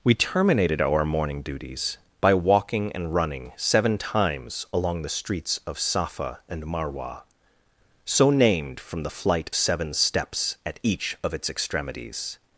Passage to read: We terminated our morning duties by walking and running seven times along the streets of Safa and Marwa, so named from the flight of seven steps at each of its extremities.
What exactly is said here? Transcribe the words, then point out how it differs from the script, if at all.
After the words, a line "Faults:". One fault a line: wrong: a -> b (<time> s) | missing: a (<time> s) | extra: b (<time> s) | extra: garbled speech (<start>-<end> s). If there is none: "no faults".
We terminated our morning duties by walking and running seven times along the streets of Safa and Marwa, so named from the flight seven steps at each of its extremities.
Faults:
missing: of (9.5 s)